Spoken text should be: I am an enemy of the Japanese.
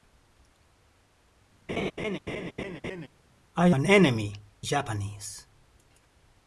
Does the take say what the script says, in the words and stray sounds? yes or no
no